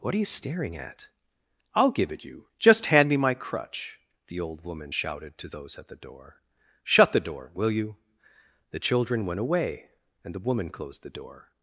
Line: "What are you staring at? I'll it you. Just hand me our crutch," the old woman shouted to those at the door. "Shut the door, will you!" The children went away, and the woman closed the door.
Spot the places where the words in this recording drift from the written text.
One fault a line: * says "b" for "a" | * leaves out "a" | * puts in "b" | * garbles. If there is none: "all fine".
* puts in "give"
* says "my" for "our"